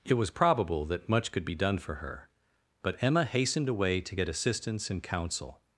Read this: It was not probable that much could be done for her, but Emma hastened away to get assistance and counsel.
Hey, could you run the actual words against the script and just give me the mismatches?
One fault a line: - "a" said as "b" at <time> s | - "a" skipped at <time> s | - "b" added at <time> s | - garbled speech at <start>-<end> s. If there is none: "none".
- "not" skipped at 0.3 s